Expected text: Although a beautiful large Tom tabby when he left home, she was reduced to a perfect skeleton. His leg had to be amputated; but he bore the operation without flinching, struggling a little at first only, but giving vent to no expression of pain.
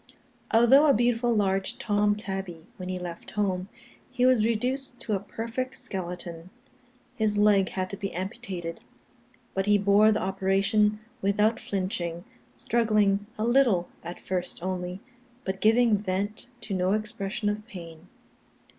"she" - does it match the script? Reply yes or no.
no